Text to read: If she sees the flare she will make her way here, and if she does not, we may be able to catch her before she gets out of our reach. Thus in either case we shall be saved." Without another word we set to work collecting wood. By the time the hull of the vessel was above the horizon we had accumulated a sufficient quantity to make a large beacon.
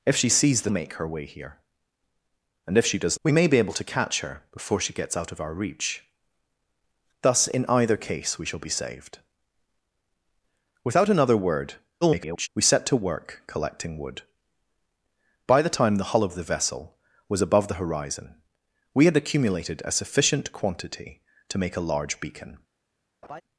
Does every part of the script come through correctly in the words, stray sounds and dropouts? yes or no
no